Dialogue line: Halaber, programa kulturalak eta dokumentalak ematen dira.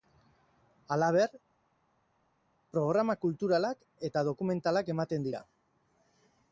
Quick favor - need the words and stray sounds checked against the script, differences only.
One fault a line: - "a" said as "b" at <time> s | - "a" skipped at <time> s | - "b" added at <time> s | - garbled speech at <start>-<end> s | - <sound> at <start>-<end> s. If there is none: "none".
none